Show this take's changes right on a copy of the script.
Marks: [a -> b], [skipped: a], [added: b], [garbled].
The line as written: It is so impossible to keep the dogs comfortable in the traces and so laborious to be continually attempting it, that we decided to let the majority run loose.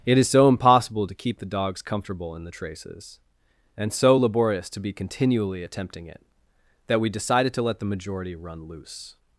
It is so impossible to keep the dogs comfortable in the traces and so laborious to be continually attempting it, that we decided to let the majority run loose.